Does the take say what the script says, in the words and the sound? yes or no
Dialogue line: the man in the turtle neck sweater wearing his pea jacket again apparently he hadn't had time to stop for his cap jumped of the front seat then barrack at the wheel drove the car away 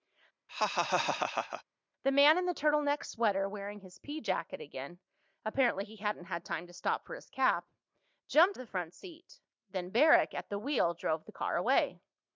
no